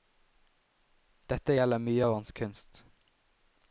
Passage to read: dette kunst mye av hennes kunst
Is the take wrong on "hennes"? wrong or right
wrong